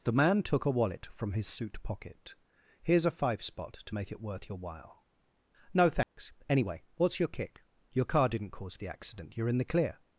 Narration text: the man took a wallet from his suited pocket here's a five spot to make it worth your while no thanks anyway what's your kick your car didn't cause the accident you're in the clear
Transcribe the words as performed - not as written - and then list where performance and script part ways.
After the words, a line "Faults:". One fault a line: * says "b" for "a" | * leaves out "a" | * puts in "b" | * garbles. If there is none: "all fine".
the man took a wallet from his suit pocket here's a five spot to make it worth your while no thanks anyway what's your kick your car didn't cause the accident you're in the clear
Faults:
* says "suit" for "suited"